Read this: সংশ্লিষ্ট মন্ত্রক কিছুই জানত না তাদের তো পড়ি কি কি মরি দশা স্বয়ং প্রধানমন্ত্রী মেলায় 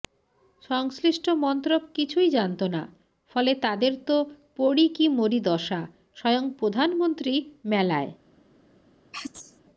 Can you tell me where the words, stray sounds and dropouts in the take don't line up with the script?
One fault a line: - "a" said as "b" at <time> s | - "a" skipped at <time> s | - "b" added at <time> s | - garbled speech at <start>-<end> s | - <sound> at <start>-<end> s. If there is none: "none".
- "ফলে" added at 3.3 s
- "কি" skipped at 5.0 s
- sneeze at 9.1-9.6 s